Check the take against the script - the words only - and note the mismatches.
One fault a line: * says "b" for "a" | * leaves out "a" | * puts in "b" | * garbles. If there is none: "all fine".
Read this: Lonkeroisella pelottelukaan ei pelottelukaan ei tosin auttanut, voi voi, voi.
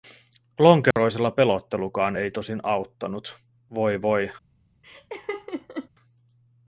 * leaves out "pelottelukaan ei"
* leaves out "voi"